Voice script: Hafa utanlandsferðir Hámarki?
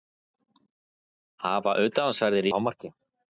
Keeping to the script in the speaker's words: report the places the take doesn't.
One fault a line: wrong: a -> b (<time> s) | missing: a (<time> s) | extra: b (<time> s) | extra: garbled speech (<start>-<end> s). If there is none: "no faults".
no faults